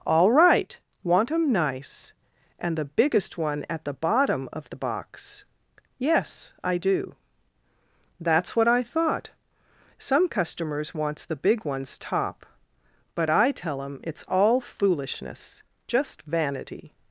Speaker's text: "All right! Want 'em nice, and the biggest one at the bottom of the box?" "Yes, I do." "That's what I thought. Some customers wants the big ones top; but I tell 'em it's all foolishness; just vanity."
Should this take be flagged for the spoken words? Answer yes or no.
no